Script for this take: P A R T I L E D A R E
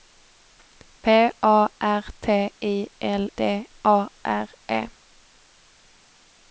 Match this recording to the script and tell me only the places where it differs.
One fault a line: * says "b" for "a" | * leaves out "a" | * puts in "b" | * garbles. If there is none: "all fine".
* leaves out "E"